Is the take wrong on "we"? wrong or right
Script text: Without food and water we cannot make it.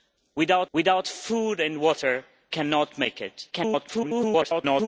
wrong